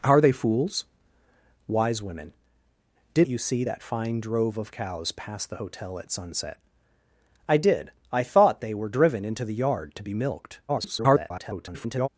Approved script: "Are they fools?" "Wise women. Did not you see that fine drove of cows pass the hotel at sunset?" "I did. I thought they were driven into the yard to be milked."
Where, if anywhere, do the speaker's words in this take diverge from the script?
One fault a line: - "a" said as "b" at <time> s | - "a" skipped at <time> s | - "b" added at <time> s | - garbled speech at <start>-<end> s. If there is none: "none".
- "not" skipped at 3.3 s
- garbled speech at 10.7-12.1 s